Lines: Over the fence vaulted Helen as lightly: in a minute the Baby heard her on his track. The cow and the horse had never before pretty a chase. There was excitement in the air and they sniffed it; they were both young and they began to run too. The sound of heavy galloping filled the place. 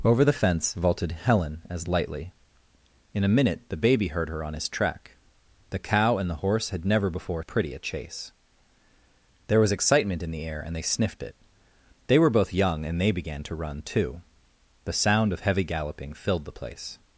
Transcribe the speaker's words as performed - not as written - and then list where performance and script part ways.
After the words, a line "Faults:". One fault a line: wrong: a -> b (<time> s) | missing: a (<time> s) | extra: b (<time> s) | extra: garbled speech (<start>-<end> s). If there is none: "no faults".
Over the fence vaulted Helen as lightly: in a minute the Baby heard her on his track. The cow and the horse had never before pretty a chase. There was excitement in the air and they sniffed it; they were both young and they began to run too. The sound of heavy galloping filled the place.
Faults:
no faults